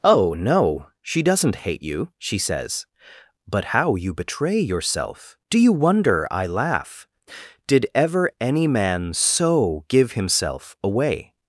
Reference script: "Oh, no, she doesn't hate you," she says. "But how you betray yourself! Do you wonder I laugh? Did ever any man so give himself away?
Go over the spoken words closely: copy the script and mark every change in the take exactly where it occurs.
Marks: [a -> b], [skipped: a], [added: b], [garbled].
"Oh, no, she doesn't hate you," she says. "But how you betray yourself! Do you wonder I laugh? Did ever any man so give himself away?